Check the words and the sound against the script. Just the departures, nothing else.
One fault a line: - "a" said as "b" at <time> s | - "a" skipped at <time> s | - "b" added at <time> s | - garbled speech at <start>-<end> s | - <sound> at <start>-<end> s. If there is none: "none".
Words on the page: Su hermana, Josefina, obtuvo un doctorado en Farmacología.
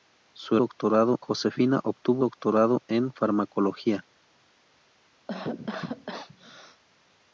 - "hermana" said as "doctorado" at 0.6 s
- "un" skipped at 2.2 s
- cough at 5.3-6.8 s